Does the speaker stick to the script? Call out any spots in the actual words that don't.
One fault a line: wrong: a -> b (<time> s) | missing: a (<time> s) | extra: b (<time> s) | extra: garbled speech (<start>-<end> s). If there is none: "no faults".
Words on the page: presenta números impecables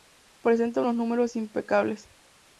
extra: unos (0.8 s)